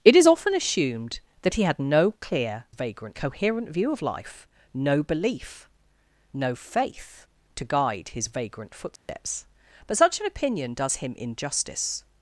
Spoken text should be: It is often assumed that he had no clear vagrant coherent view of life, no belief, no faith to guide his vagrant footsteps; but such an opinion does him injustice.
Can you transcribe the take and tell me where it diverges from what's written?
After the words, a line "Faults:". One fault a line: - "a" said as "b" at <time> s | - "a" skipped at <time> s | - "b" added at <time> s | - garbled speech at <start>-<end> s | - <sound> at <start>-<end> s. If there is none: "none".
It is often assumed that he had no clear vagrant coherent view of life, no belief, no faith to guide his vagrant footsteps; but such an opinion does him injustice.
Faults:
- dropout at 9.0-9.1 s